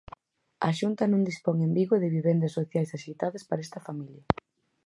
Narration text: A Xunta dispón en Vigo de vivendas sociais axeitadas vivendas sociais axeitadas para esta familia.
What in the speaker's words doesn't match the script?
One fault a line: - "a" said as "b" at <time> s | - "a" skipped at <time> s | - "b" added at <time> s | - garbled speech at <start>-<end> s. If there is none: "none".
- "non" added at 1.1 s
- "vivendas sociais axeitadas" skipped at 3.4 s